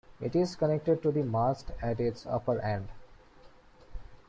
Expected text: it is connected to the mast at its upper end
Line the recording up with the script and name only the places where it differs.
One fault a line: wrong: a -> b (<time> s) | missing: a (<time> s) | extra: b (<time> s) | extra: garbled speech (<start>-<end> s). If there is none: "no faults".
no faults